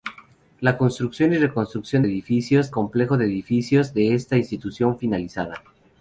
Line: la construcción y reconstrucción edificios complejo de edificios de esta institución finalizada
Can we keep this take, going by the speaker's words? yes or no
yes